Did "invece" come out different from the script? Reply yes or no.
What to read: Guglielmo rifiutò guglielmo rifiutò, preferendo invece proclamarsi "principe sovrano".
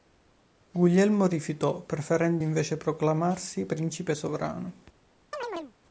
no